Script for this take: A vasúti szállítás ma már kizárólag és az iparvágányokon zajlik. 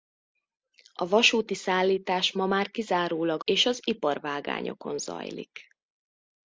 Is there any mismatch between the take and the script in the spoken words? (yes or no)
no